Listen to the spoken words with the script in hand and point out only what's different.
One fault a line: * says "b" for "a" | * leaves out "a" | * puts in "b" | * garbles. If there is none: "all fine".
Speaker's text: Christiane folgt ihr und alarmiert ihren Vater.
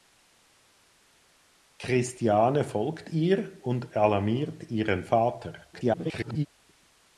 * garbles